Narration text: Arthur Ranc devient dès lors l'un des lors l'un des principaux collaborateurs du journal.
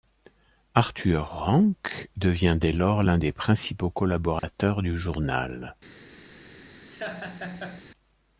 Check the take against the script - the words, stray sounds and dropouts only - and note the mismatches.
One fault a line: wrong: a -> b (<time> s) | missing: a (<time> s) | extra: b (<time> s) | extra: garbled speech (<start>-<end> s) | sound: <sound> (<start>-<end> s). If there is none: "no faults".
missing: lors l'un des (3.3 s)
sound: dropout (4.4-4.4 s)
sound: laugh (6.9-7.8 s)